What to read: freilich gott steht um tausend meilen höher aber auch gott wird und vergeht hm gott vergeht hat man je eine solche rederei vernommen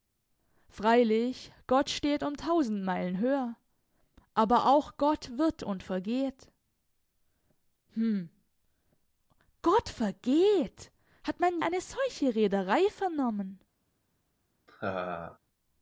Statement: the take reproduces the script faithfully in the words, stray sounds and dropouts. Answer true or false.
false